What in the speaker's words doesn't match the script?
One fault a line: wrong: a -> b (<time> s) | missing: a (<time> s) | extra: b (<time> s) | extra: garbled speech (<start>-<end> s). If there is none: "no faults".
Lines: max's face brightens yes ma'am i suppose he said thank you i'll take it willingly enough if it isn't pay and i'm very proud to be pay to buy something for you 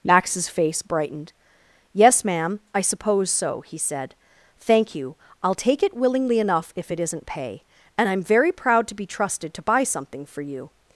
wrong: brightens -> brightened (0.8 s)
extra: so (3.3 s)
wrong: pay -> trusted (9.1 s)